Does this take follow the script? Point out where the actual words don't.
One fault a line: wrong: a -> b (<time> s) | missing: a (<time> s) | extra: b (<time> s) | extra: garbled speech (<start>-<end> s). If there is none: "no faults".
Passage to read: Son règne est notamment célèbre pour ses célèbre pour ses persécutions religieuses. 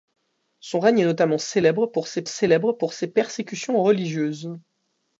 no faults